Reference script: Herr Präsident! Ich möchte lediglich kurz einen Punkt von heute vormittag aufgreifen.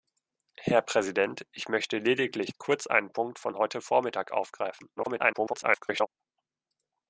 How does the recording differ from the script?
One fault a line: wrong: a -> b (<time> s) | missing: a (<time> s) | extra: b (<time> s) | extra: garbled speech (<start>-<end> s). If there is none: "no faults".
extra: garbled speech (5.0-6.1 s)